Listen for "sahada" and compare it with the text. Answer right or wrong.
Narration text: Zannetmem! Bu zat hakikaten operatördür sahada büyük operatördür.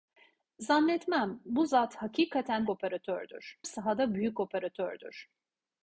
right